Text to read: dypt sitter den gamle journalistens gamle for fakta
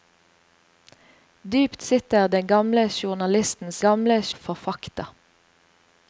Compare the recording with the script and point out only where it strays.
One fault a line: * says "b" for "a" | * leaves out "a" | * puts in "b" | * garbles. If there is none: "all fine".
all fine